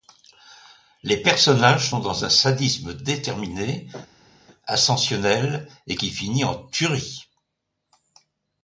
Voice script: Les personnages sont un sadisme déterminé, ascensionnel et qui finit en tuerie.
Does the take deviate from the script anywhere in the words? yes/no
yes